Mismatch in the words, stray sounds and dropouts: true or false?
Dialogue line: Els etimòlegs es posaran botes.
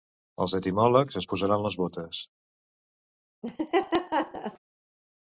true